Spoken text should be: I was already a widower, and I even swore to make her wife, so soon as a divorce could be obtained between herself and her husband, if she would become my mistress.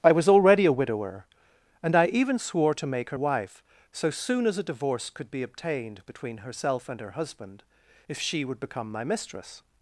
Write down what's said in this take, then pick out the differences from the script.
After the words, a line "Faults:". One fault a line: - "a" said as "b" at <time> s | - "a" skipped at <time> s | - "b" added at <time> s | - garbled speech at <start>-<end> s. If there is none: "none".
I was already a widower, and I even swore to make her wife, so soon as a divorce could be obtained between herself and her husband, if she would become my mistress.
Faults:
none